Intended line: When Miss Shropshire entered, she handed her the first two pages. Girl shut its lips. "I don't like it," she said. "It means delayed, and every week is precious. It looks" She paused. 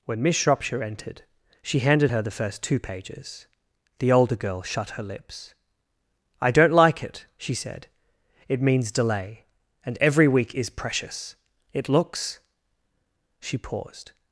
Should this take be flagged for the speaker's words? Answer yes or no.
yes